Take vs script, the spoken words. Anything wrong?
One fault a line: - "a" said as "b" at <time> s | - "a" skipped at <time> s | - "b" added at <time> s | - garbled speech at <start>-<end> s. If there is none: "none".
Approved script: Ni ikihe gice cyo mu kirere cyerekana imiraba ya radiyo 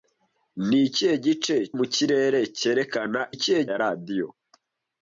- "cyo" skipped at 1.6 s
- "imiraba" said as "ikihe" at 3.3 s